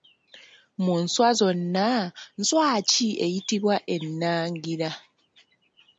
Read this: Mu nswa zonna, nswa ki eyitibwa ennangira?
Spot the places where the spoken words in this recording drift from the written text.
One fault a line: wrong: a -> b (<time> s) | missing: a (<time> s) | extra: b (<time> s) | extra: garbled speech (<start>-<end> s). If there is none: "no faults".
no faults